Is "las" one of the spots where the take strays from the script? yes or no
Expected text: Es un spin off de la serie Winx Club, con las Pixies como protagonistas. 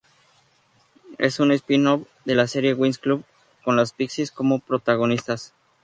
no